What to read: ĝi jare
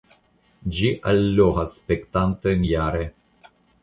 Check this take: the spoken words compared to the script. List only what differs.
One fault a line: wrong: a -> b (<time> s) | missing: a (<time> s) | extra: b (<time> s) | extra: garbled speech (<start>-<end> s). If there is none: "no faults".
extra: allogas spektantojn (1.1 s)